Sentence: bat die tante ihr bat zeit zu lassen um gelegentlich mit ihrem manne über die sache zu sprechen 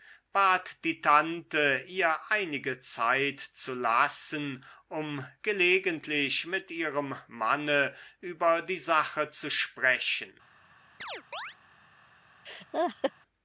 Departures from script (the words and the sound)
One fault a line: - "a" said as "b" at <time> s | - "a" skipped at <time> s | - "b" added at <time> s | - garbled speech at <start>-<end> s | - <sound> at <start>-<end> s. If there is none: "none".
- "bat" said as "einige" at 2.3 s
- chirp at 11.0-11.6 s
- laugh at 12.4-13.1 s